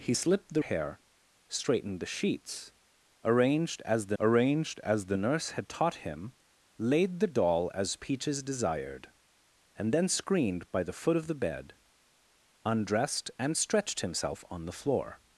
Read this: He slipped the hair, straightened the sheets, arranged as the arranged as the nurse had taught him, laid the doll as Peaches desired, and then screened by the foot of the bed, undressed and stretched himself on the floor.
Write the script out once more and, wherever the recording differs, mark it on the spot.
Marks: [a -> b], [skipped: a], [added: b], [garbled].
He slipped the hair, straightened the sheets, arranged as the arranged as the nurse had taught him, laid the doll as Peaches desired, and then screened by the foot of the bed, undressed and stretched himself on the floor.